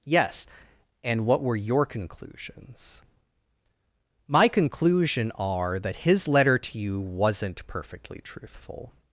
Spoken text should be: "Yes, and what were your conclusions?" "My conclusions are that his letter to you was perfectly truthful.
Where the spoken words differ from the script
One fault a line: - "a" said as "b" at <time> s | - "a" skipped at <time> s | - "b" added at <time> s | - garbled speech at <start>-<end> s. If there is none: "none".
- "conclusions" said as "conclusion" at 4.5 s
- "was" said as "wasn't" at 7.0 s